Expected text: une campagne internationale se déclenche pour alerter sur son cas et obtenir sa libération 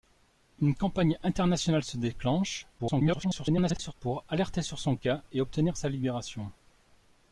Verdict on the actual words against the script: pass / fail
fail